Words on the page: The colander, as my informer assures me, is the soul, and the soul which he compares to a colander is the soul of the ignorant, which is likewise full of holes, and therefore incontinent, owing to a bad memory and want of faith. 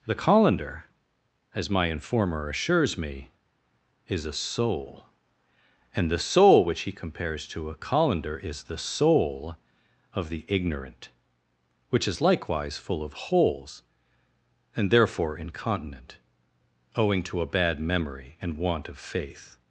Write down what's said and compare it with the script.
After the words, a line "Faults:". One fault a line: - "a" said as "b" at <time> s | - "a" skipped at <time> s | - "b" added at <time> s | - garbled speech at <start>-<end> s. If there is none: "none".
The colander, as my informer assures me, is a soul, and the soul which he compares to a colander is the soul of the ignorant, which is likewise full of holes, and therefore incontinent, owing to a bad memory and want of faith.
Faults:
- "the" said as "a" at 4.2 s